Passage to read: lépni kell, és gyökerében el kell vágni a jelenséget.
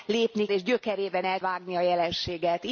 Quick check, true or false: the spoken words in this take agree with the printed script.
false